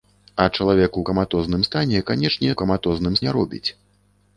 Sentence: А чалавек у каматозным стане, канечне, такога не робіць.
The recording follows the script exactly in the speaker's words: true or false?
false